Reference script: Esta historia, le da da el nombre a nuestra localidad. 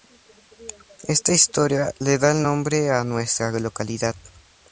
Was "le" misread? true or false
false